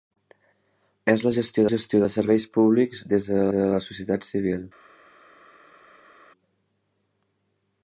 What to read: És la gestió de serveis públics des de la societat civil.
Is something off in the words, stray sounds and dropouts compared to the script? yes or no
yes